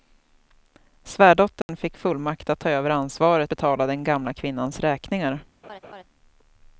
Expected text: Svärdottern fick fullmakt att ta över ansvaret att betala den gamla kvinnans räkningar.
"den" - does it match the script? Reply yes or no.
yes